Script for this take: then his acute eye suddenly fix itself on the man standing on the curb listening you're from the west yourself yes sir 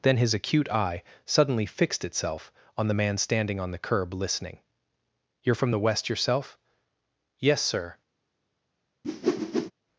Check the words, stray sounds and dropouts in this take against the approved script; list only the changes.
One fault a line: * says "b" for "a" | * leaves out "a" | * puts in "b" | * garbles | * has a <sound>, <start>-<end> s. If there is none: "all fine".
* says "fixed" for "fix"
* has a whoosh, 9.0-9.7 s